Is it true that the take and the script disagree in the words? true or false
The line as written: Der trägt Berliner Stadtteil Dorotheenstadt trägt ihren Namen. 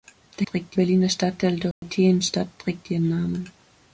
false